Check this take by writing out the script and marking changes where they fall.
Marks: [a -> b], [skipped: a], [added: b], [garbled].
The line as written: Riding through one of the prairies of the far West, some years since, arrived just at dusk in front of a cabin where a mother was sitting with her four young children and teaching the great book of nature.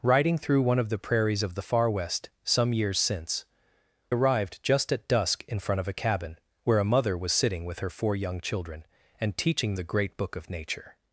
Riding through one of the prairies of the far West, some years since, arrived just at dusk in front of a cabin where a mother was sitting with her four young children and teaching the great book of nature.